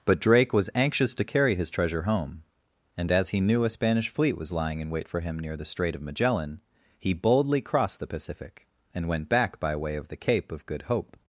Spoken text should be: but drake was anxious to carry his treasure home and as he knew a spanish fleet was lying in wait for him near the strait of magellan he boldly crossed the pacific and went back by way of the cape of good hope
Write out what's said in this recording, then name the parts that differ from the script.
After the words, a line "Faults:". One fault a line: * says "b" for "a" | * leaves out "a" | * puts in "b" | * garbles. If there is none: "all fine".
but drake was anxious to carry his treasure home and as he knew a spanish fleet was lying in wait for him near the strait of magellan he boldly crossed the pacific and went back by way of the cape of good hope
Faults:
all fine